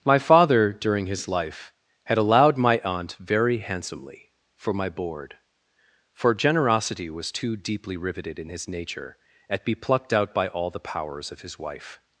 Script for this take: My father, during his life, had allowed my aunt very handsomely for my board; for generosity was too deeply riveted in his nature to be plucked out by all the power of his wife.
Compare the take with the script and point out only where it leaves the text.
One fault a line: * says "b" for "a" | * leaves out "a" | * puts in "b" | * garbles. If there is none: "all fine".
* says "at" for "to"
* says "powers" for "power"